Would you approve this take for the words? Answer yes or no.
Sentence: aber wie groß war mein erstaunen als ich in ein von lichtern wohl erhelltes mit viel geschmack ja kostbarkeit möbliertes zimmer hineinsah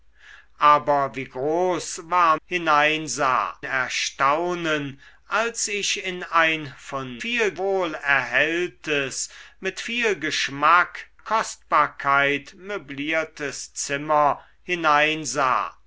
no